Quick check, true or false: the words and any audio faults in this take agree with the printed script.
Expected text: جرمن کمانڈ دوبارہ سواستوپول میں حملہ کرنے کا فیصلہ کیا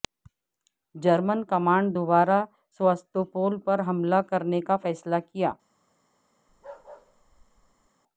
false